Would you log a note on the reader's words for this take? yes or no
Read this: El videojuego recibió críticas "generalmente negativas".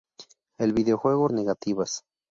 yes